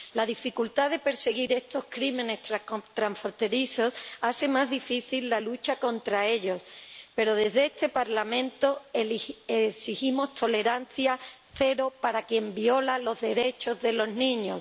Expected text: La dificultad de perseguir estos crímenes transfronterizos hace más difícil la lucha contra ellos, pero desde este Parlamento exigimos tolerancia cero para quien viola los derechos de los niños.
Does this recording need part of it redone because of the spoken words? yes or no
no